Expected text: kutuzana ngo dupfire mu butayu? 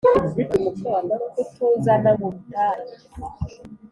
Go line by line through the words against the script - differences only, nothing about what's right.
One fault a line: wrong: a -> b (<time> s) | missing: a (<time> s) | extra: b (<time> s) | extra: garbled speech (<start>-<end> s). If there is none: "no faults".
missing: ngo dupfire (2.1 s)